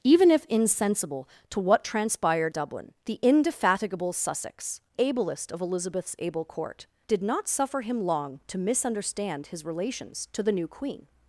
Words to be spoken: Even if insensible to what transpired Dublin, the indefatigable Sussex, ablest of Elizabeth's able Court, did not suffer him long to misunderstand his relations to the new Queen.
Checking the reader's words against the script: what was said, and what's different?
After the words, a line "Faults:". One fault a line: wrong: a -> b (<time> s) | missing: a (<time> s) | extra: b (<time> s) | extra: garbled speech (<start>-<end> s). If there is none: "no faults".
Even if insensible to what transpired Dublin, the indefatigable Sussex, ablest of Elizabeth's able Court, did not suffer him long to misunderstand his relations to the new Queen.
Faults:
no faults